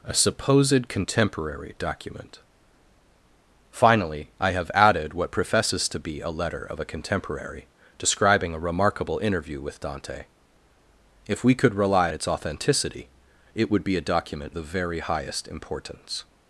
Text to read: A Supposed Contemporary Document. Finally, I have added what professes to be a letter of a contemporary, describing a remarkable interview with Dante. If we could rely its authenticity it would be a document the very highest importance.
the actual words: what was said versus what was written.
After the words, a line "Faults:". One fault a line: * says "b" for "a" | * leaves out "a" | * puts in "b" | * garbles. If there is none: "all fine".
A Supposed Contemporary Document. Finally, I have added what professes to be a letter of a contemporary, describing a remarkable interview with Dante. If we could rely its authenticity it would be a document the very highest importance.
Faults:
all fine